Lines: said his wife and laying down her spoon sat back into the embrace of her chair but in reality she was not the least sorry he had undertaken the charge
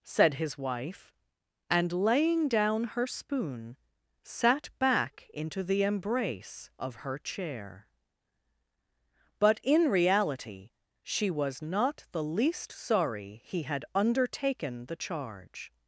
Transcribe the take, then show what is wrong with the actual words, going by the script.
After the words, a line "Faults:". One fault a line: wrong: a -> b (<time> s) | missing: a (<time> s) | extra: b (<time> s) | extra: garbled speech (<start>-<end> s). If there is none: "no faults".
said his wife and laying down her spoon sat back into the embrace of her chair but in reality she was not the least sorry he had undertaken the charge
Faults:
no faults